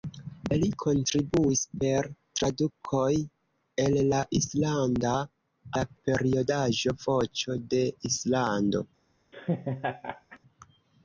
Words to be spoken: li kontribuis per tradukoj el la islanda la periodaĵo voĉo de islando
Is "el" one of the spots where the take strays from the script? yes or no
no